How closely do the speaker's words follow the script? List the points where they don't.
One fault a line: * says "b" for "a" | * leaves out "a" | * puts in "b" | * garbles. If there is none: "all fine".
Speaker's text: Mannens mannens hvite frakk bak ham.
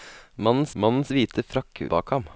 all fine